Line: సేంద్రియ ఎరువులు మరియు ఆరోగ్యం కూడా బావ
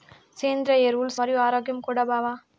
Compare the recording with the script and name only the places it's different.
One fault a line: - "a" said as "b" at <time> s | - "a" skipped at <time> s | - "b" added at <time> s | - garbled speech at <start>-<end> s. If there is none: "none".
none